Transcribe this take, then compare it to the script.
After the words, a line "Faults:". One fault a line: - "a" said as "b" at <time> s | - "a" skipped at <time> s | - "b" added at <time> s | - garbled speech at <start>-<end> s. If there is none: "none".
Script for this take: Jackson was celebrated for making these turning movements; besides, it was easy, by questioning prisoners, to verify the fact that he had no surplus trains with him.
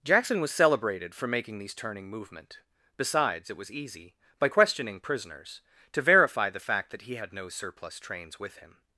Jackson was celebrated for making these turning movement; besides, it was easy, by questioning prisoners, to verify the fact that he had no surplus trains with him.
Faults:
- "movements" said as "movement" at 2.1 s